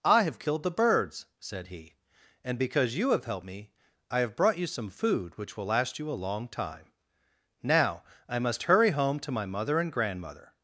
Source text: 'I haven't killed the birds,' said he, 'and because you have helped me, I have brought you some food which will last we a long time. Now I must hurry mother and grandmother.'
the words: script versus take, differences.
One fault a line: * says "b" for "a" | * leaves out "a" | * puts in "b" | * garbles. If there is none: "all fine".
* says "have" for "haven't"
* says "you" for "we"
* puts in "home to my"